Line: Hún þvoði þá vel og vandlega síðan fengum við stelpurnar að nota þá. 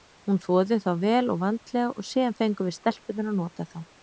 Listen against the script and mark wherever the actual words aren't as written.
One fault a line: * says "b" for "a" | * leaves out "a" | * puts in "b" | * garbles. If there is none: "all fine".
* puts in "og"